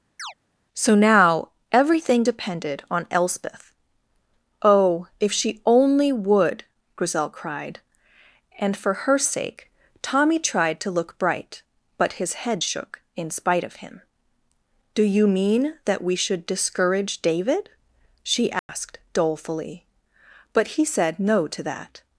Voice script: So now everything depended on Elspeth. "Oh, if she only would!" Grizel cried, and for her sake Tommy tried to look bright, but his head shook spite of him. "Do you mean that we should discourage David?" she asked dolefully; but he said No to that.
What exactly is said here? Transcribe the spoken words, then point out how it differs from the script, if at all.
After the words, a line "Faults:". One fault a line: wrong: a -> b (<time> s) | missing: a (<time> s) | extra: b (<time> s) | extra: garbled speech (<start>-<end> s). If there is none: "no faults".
So now everything depended on Elspeth. "Oh, if she only would!" Grizel cried, and for her sake Tommy tried to look bright, but his head shook in spite of him. "Do you mean that we should discourage David?" she asked dolefully; but he said No to that.
Faults:
extra: in (13.1 s)